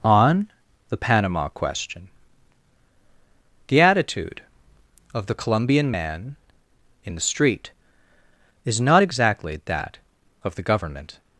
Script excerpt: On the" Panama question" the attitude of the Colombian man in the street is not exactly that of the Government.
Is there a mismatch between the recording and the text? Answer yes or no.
no